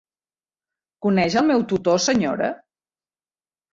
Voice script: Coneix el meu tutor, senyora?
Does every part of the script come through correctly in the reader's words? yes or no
yes